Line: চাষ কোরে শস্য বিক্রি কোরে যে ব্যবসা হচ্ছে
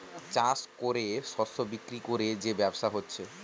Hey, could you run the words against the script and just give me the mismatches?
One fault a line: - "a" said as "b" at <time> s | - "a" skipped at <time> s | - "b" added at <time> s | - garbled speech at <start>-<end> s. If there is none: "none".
none